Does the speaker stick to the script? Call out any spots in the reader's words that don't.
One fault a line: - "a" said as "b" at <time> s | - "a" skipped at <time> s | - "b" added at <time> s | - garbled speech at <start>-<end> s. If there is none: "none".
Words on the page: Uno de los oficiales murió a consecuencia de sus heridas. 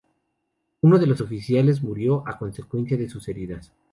none